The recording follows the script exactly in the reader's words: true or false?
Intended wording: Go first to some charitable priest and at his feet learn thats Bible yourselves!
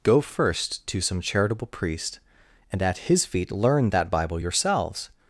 false